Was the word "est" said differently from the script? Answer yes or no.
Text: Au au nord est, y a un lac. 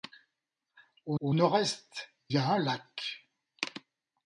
no